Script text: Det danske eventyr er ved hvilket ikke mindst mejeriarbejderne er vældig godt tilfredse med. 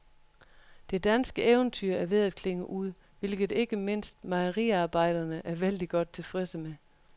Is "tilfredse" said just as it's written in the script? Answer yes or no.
yes